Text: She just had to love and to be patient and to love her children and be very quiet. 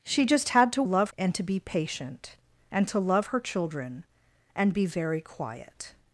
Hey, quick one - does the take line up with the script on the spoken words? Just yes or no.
yes